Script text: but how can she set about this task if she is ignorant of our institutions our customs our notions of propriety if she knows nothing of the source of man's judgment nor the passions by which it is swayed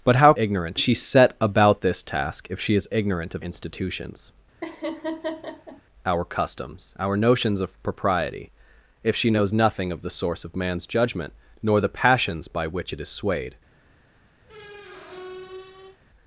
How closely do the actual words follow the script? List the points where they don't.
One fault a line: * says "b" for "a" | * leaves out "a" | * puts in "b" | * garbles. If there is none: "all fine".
* says "ignorant" for "can"
* leaves out "our"